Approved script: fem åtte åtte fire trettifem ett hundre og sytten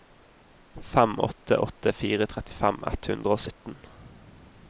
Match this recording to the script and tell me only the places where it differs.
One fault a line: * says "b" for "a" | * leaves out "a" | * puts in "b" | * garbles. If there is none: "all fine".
all fine